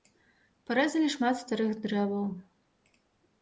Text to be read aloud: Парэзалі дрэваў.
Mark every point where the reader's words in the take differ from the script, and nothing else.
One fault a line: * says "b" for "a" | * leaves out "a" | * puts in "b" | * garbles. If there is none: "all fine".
* puts in "шмат старых"